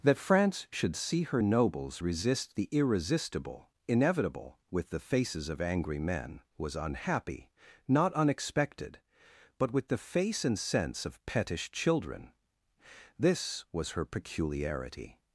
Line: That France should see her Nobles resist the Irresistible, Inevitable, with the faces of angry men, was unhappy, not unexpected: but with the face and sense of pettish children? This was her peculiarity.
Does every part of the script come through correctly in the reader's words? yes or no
yes